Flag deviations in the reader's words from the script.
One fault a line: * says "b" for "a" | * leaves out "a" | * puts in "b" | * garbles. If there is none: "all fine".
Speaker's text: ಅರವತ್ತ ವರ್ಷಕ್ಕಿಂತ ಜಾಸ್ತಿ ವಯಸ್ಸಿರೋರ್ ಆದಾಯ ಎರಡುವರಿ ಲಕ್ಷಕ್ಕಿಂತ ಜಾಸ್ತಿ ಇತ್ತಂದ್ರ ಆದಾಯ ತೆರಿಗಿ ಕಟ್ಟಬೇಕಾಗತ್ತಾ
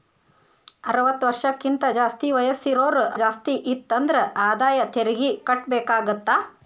* leaves out "ಆದಾಯ ಎರಡುವರಿ ಲಕ್ಷಕ್ಕಿಂತ"